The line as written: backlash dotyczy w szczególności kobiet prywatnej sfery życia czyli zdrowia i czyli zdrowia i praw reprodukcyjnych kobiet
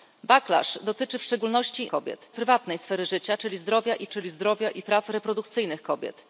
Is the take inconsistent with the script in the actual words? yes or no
no